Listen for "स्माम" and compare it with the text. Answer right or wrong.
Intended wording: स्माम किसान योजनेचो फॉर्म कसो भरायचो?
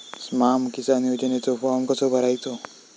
right